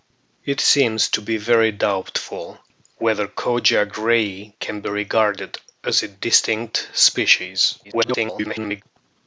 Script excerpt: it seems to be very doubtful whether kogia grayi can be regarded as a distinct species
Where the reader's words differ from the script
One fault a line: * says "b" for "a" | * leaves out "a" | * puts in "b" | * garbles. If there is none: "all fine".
* garbles